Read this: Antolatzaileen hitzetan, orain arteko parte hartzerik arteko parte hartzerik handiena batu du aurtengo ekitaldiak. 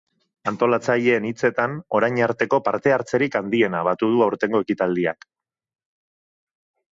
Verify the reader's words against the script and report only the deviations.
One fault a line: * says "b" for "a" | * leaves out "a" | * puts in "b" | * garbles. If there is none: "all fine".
* leaves out "arteko parte hartzerik"